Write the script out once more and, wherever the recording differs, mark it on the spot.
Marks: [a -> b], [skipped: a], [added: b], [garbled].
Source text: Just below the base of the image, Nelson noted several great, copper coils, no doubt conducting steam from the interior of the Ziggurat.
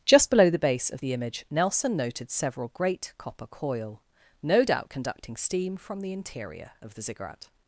Just below the base of the image, Nelson noted several great, copper [coils, -> coil] no doubt conducting steam from the interior of the Ziggurat.